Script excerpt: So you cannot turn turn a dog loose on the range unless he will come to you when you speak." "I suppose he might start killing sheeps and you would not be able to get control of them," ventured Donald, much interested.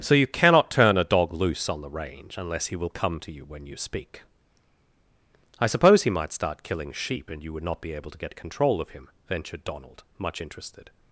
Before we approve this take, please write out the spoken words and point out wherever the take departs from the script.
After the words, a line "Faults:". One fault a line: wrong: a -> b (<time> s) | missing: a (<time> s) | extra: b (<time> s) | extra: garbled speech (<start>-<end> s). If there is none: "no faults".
So you cannot turn a dog loose on the range unless he will come to you when you speak." "I suppose he might start killing sheep and you would not be able to get control of him," ventured Donald, much interested.
Faults:
missing: turn (1.0 s)
wrong: sheeps -> sheep (6.9 s)
wrong: them -> him (8.9 s)